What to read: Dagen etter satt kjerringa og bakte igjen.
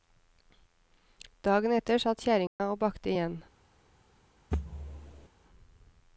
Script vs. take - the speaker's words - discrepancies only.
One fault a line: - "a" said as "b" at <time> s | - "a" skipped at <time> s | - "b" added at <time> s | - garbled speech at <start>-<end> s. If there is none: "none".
none